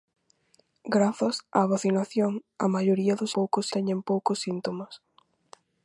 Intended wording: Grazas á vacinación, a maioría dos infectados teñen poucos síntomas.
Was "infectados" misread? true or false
true